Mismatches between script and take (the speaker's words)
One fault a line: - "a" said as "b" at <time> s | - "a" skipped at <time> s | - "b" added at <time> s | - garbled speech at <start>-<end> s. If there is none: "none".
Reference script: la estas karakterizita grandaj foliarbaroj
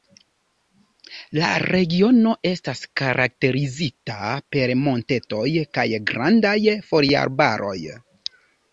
- "regiono" added at 1.6 s
- "per montetoj kaj" added at 4.6 s